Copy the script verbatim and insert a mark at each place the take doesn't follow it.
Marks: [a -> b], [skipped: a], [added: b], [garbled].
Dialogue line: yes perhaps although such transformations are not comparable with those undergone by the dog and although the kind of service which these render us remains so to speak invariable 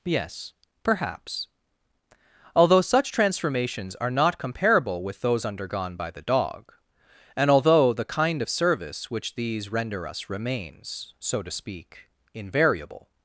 yes perhaps although such transformations are not comparable with those undergone by the dog and although the kind of service which these render us remains so to speak invariable